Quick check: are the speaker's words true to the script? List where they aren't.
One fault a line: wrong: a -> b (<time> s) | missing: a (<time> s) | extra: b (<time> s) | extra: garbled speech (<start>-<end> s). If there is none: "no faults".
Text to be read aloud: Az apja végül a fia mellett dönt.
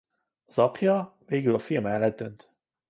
no faults